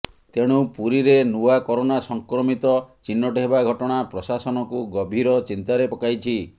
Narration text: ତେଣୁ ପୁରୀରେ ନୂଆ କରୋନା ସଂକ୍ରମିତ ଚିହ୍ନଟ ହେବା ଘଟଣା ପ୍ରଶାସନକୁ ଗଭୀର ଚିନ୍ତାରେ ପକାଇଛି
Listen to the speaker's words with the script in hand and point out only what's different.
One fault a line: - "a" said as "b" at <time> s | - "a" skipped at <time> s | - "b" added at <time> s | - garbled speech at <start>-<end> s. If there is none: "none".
none